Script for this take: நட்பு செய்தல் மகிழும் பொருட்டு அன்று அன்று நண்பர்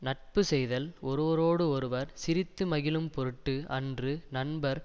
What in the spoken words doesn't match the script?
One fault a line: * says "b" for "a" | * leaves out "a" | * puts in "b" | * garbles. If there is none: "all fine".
* puts in "ஒருவரோடு ஒருவர் சிரித்து"
* leaves out "அன்று"